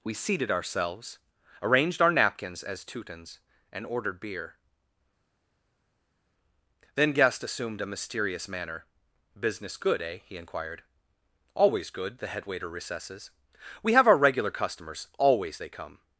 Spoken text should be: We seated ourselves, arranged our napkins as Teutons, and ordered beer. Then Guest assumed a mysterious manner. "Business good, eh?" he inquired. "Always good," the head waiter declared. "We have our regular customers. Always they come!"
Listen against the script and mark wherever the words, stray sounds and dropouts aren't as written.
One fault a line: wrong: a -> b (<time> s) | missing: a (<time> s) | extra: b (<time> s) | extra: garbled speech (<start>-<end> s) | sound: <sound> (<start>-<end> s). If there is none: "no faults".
wrong: declared -> recesses (12.7 s)